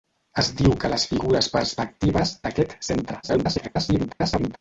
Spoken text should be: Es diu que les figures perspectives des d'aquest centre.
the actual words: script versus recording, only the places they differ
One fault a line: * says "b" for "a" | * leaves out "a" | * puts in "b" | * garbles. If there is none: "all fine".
* leaves out "des"
* garbles